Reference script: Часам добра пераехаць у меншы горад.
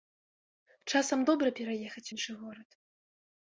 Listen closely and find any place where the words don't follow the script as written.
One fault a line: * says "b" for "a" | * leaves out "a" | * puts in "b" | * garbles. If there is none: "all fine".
* leaves out "у"